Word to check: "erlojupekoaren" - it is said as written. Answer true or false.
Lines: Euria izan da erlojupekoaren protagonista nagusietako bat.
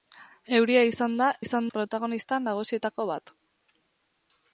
false